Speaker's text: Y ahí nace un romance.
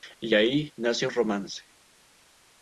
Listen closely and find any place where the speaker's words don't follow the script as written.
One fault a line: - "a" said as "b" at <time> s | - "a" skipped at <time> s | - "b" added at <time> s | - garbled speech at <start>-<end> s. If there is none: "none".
- "un" skipped at 1.1 s